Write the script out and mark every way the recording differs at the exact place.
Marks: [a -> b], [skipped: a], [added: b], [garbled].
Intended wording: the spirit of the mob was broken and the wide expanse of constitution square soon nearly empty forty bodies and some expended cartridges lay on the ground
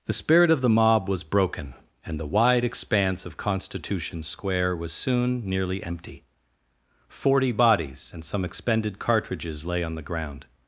the spirit of the mob was broken and the wide expanse of constitution square [added: was] soon nearly empty forty bodies and some expended cartridges lay on the ground